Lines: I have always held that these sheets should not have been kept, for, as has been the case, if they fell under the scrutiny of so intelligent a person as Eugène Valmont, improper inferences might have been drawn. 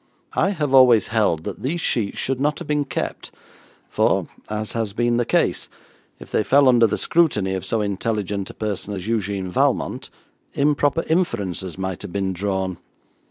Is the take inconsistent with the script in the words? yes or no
no